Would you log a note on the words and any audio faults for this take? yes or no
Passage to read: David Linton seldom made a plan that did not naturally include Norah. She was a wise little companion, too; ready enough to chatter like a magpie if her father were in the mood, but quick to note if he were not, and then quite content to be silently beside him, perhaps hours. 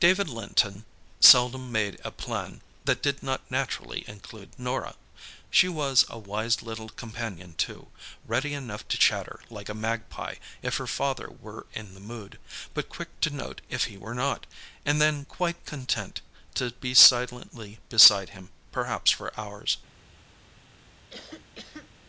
yes